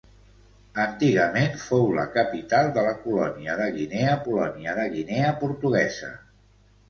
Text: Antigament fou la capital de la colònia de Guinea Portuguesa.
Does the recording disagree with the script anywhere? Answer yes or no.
yes